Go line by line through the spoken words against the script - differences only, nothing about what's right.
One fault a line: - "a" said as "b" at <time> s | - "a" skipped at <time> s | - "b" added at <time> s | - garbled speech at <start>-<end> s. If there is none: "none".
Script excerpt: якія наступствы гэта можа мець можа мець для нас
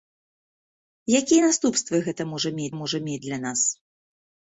none